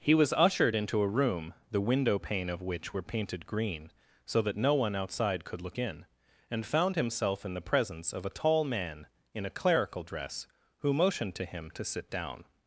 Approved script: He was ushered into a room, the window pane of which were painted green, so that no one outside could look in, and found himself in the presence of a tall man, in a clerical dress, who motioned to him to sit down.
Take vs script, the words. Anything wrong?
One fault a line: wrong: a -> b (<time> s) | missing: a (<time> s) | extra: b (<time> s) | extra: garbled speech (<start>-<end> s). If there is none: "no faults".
no faults